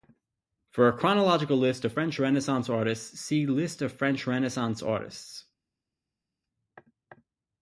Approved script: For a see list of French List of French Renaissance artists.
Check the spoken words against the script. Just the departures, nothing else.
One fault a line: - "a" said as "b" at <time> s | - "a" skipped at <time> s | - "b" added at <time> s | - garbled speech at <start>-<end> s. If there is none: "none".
- "see" said as "chronological" at 1.0 s
- "Renaissance artists see" added at 2.2 s